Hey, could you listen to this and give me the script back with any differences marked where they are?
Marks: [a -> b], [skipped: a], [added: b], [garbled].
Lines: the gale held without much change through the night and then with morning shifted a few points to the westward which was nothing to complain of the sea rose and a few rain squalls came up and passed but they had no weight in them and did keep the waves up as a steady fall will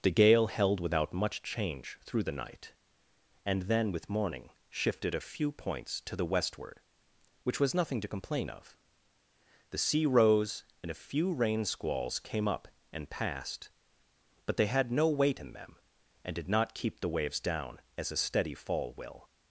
the gale held without much change through the night and then with morning shifted a few points to the westward which was nothing to complain of the sea rose and a few rain squalls came up and passed but they had no weight in them and did [added: not] keep the waves [up -> down] as a steady fall will